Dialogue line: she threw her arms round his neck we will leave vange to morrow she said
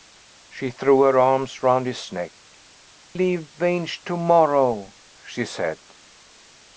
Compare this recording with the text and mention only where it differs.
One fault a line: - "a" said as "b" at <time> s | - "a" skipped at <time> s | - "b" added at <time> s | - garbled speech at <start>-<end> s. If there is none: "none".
- "we will" skipped at 2.3 s